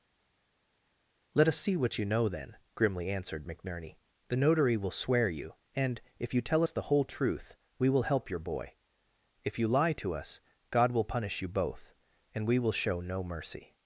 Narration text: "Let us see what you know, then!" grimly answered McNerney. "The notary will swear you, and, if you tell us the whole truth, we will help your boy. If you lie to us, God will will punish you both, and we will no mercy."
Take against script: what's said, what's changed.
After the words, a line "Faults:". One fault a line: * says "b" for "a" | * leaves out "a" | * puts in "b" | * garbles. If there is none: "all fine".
"Let us see what you know, then!" grimly answered McNerney. "The notary will swear you, and, if you tell us the whole truth, we will help your boy. If you lie to us, God will punish you both, and we will show no mercy."
Faults:
* leaves out "will"
* puts in "show"